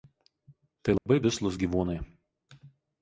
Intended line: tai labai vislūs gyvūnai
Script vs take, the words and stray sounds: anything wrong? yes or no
yes